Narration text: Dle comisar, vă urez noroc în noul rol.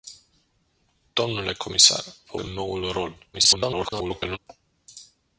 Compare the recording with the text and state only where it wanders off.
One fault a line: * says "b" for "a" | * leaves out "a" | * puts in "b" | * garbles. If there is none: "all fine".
* leaves out "urez noroc"
* garbles